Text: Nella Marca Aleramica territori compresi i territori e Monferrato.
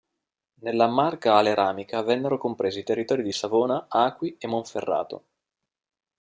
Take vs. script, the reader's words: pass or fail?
fail